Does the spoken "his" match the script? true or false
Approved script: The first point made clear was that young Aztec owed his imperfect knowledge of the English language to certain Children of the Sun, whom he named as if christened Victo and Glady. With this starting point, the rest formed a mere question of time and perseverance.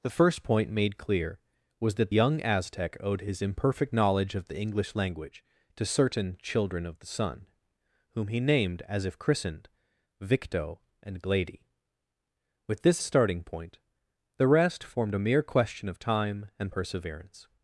true